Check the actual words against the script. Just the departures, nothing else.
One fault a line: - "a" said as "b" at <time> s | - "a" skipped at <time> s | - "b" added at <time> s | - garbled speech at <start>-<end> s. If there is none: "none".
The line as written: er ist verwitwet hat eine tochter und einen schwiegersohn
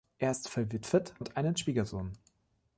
- "hat eine tochter" skipped at 1.1 s